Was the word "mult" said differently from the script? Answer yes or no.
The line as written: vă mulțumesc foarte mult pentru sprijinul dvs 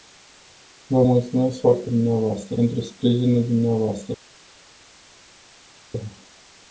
yes